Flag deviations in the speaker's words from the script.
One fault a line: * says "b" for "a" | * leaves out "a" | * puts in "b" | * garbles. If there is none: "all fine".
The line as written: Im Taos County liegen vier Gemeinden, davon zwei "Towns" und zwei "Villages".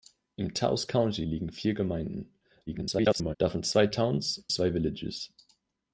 * garbles
* leaves out "und"